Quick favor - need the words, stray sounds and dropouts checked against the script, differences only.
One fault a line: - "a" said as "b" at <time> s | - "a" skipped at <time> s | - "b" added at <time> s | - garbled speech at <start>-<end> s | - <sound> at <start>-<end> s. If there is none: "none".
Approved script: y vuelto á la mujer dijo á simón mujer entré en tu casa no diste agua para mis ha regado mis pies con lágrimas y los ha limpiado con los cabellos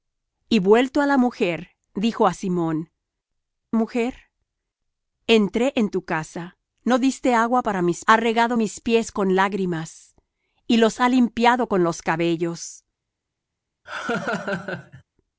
- laugh at 13.9-15.0 s